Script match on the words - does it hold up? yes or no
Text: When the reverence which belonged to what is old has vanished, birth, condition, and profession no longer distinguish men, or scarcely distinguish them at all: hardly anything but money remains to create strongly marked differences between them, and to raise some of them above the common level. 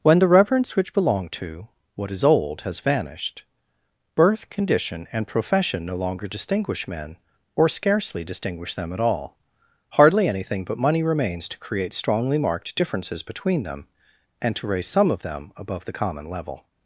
yes